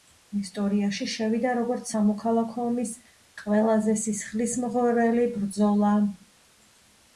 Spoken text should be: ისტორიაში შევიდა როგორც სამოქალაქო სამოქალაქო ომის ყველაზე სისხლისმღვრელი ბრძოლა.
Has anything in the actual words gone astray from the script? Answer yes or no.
yes